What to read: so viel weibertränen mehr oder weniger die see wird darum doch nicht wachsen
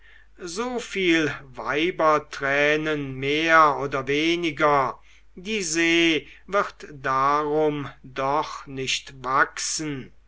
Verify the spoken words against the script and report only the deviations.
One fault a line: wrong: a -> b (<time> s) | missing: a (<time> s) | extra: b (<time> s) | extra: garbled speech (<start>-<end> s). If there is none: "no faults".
no faults